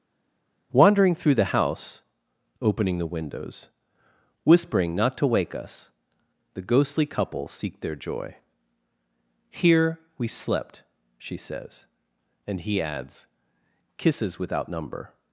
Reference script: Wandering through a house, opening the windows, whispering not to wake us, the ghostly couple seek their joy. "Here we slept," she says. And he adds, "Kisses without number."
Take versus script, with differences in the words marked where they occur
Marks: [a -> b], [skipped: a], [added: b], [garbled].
Wandering through [a -> the] house, opening the windows, whispering not to wake us, the ghostly couple seek their joy. "Here we slept," she says. And he adds, "Kisses without number."